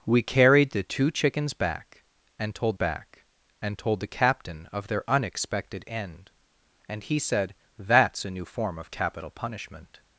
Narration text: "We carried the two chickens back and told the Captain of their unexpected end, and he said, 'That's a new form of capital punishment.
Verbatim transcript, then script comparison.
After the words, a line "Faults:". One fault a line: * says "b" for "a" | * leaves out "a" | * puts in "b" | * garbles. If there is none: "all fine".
"We carried the two chickens back and told back and told the Captain of their unexpected end, and he said, 'That's a new form of capital punishment.
Faults:
* puts in "back and told"